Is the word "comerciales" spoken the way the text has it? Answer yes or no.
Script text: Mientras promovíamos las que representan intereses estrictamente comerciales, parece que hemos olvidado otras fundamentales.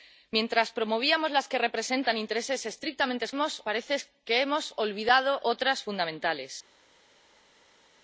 no